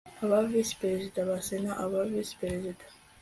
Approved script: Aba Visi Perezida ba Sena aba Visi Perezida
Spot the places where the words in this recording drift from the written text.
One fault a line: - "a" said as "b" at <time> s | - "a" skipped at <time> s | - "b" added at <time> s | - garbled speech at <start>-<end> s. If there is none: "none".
none